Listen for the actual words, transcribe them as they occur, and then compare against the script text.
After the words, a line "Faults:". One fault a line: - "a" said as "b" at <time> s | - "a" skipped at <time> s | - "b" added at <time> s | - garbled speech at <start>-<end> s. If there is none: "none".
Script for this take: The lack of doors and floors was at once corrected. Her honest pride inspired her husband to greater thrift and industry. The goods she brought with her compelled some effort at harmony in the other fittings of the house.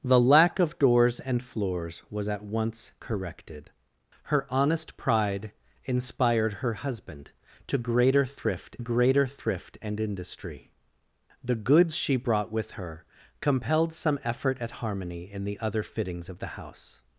The lack of doors and floors was at once corrected. Her honest pride inspired her husband to greater thrift greater thrift and industry. The goods she brought with her compelled some effort at harmony in the other fittings of the house.
Faults:
- "greater thrift" added at 8.8 s